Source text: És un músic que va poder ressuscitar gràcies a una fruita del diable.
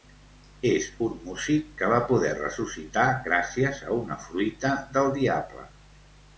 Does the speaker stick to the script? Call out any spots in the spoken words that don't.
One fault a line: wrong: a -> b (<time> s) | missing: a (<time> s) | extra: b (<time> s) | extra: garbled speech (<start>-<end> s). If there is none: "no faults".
no faults